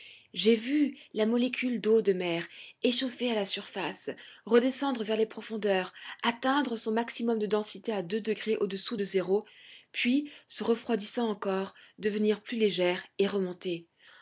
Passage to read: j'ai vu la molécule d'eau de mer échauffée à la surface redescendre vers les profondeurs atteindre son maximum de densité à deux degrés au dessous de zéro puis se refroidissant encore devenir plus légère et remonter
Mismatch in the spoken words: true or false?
false